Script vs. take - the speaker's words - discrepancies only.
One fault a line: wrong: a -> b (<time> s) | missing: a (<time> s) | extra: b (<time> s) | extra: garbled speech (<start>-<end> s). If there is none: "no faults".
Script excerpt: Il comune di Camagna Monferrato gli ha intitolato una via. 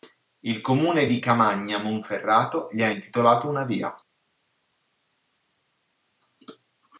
no faults